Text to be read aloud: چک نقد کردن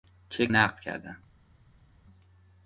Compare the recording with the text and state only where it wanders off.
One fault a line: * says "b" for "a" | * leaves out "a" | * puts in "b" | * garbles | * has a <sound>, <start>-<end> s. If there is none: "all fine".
all fine